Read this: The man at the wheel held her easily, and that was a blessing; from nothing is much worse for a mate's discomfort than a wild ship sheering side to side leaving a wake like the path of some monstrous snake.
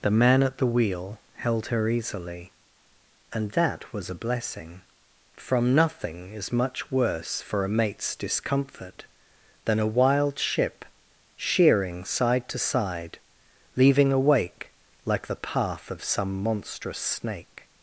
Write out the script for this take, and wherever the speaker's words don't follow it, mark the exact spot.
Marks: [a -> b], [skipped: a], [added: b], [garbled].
The man at the wheel held her easily, and that was a blessing; from nothing is much worse for a mate's discomfort than a wild ship sheering side to side leaving a wake like the path of some monstrous snake.